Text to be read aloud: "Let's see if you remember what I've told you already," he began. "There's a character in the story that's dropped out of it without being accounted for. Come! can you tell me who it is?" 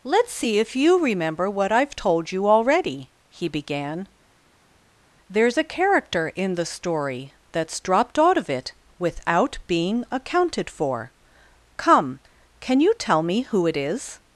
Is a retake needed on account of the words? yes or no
no